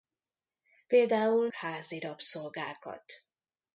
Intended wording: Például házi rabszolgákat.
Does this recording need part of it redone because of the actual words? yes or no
no